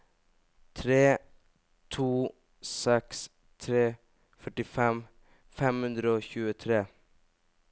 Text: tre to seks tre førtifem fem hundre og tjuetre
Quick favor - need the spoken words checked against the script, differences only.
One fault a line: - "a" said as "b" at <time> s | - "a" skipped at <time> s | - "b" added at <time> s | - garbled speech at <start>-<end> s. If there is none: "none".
none